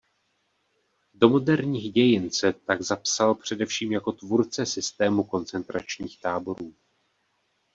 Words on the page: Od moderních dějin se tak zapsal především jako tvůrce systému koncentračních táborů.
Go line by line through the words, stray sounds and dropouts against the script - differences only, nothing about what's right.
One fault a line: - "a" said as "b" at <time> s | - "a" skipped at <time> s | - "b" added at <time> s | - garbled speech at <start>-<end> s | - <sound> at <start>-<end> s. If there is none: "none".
- "Od" said as "Do" at 1.1 s